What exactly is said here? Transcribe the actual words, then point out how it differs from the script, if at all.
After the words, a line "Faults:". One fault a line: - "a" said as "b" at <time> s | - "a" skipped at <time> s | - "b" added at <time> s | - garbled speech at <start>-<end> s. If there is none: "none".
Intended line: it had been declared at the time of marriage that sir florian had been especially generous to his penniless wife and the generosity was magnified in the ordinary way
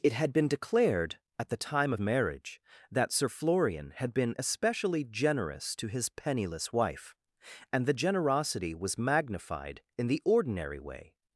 it had been declared at the time of marriage that sir florian had been especially generous to his penniless wife and the generosity was magnified in the ordinary way
Faults:
none